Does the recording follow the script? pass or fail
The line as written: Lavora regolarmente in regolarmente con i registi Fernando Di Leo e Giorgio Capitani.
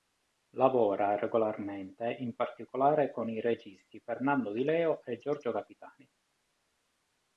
fail